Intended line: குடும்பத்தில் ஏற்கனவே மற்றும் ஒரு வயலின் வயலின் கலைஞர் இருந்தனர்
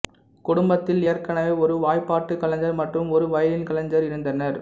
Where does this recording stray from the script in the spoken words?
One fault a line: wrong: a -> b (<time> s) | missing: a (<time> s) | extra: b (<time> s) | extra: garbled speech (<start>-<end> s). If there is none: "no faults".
extra: ஒரு வாய்ப்பாட்டு கலைஞர் (1.6 s)
missing: வயலின் (3.7 s)